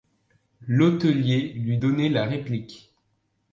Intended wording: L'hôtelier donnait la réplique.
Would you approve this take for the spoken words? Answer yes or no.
no